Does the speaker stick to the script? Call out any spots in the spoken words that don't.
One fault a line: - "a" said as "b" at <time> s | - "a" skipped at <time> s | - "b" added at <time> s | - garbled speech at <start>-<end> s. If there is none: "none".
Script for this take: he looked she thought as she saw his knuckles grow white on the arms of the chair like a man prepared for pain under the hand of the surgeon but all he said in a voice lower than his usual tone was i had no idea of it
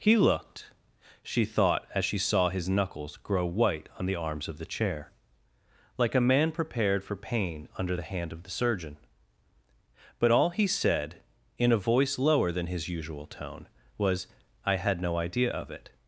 none